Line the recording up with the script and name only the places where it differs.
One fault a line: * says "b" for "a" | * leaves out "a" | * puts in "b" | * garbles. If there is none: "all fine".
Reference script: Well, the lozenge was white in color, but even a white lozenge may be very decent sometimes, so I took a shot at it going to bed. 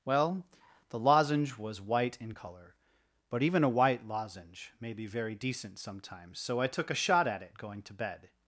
all fine